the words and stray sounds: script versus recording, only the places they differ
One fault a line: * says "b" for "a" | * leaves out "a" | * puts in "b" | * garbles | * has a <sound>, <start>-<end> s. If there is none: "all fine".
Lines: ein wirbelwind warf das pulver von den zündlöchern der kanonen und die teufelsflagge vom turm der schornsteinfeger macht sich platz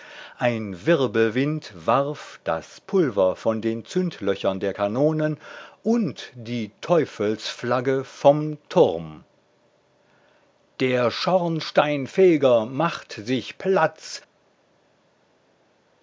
all fine